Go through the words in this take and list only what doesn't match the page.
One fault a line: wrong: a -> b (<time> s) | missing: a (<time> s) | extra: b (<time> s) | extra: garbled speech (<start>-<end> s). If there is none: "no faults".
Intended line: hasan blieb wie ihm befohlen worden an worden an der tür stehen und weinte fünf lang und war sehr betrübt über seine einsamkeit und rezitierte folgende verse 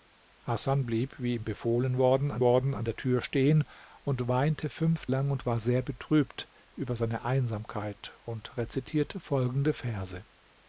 no faults